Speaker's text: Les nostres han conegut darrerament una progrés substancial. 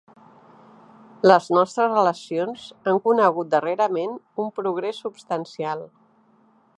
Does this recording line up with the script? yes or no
no